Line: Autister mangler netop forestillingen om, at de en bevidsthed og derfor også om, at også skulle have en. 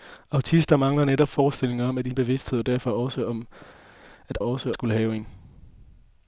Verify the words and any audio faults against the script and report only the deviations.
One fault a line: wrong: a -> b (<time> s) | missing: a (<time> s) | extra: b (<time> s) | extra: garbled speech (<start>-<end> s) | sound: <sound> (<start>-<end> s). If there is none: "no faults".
no faults